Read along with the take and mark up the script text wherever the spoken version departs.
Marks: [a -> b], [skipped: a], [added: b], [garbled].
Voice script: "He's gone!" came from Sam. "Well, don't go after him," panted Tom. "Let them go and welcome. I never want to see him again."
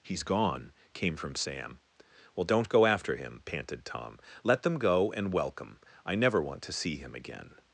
"He's gone!" came from Sam. "Well, don't go after him," panted Tom. "Let them go and welcome. I never want to see him again."